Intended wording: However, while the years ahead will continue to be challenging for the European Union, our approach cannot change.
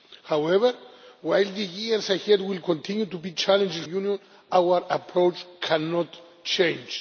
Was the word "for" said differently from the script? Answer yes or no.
yes